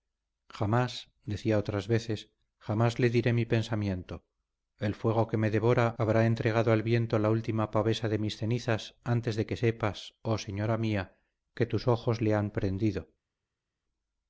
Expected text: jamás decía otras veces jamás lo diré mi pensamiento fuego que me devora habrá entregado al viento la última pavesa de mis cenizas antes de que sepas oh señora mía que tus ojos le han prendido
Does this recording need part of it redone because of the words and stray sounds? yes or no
yes